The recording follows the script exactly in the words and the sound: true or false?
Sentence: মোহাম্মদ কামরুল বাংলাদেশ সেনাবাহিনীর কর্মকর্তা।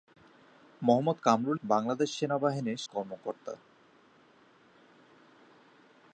true